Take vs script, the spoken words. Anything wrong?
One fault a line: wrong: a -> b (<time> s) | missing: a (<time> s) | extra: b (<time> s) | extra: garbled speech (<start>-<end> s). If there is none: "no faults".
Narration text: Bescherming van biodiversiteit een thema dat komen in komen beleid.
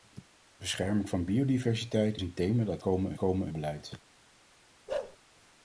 no faults